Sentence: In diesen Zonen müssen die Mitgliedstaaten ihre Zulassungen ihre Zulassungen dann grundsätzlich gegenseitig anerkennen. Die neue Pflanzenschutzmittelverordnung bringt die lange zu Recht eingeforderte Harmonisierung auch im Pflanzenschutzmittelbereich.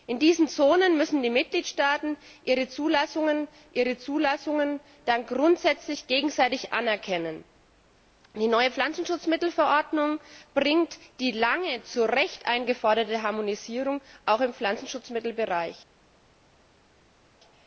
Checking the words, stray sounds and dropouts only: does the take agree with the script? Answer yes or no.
yes